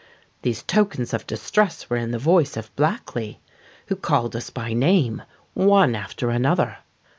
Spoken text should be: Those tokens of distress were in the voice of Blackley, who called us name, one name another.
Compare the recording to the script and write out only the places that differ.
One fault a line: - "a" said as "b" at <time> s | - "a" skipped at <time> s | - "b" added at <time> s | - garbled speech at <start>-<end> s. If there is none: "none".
- "Those" said as "These" at 0.4 s
- "by" added at 4.5 s
- "name" said as "after" at 5.9 s